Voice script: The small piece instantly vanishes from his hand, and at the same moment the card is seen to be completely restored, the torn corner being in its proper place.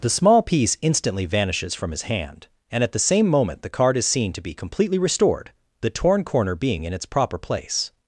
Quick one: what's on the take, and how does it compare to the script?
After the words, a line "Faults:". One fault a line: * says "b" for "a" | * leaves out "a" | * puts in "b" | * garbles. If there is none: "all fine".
The small piece instantly vanishes from his hand, and at the same moment the card is seen to be completely restored, the torn corner being in its proper place.
Faults:
all fine